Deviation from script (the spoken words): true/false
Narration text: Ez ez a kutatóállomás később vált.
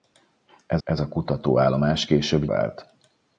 false